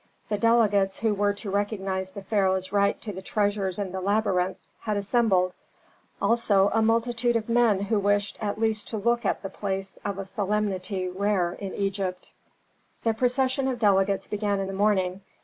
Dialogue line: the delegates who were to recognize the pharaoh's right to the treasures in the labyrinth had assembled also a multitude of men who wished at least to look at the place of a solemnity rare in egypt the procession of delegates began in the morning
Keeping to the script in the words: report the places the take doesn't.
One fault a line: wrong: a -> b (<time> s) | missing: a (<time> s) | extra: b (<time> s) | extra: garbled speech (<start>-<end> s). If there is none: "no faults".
no faults